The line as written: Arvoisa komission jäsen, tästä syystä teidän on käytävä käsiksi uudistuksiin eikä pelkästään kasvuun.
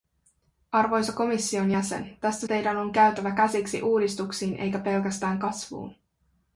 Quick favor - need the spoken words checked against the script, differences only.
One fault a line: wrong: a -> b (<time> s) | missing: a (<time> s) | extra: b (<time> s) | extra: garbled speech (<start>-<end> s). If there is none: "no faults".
missing: syystä (2.5 s)